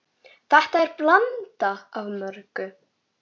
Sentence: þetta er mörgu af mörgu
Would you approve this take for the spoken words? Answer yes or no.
no